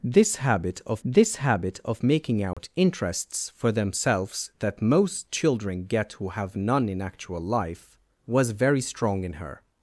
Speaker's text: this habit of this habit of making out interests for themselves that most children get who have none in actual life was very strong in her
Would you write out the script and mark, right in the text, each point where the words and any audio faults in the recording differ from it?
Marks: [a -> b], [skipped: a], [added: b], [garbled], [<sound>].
this habit of this habit of making out [dropout] interests for themselves that most children get who have none in actual life was very strong in her